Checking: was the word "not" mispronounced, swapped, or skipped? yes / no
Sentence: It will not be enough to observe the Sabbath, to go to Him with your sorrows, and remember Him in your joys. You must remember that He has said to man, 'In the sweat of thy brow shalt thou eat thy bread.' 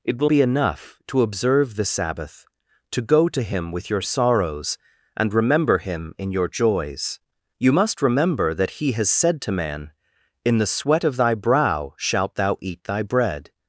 yes